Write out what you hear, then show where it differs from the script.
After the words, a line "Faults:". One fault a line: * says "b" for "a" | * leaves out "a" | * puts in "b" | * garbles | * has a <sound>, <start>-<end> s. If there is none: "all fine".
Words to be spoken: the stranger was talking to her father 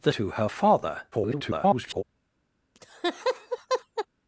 the to her father [garbled]
Faults:
* leaves out "stranger was talking"
* garbles
* has a laugh, 2.7-4.1 s